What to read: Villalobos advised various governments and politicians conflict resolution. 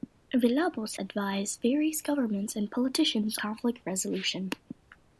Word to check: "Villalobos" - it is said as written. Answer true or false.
true